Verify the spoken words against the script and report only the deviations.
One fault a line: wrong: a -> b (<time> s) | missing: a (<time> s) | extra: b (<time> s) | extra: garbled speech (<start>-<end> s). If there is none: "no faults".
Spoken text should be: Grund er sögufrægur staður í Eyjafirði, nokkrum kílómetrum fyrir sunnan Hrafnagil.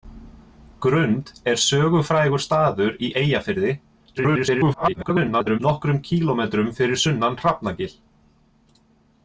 extra: garbled speech (4.2-5.6 s)